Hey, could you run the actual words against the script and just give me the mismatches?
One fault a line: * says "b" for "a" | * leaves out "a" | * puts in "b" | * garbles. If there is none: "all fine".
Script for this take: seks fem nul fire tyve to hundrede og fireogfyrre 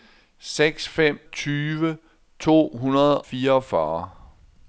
* leaves out "nul fire"
* leaves out "og"